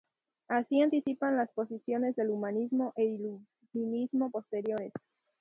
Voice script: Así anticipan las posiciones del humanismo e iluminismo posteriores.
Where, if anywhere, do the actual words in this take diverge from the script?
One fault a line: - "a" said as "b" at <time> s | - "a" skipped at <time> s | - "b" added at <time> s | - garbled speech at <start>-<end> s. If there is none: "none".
none